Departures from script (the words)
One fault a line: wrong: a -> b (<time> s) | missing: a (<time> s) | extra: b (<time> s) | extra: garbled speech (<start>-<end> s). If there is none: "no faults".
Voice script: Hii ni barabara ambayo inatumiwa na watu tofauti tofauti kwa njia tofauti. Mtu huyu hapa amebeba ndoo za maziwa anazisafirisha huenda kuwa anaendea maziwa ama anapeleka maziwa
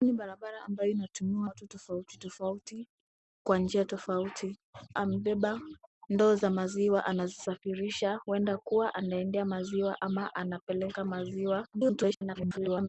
missing: na (1.5 s)
missing: Mtu huyu hapa (4.6 s)
extra: garbled speech (11.7-12.9 s)